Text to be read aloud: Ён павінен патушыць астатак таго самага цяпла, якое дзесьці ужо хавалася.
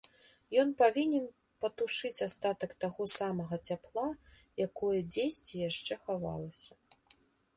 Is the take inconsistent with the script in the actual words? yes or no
yes